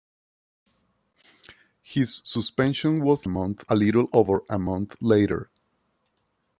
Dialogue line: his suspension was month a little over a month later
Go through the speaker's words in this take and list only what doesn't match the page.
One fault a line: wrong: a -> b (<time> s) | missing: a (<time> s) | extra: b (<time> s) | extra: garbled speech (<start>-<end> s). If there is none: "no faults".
no faults